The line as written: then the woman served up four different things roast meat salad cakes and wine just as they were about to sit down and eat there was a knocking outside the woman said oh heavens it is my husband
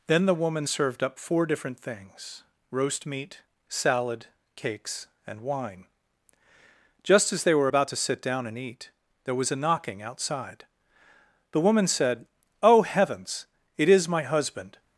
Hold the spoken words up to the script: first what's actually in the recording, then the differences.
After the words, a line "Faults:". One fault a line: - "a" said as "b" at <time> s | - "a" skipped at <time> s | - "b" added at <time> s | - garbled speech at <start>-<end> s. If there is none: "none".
then the woman served up four different things roast meat salad cakes and wine just as they were about to sit down and eat there was a knocking outside the woman said oh heavens it is my husband
Faults:
none